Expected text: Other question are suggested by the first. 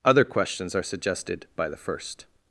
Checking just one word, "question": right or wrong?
wrong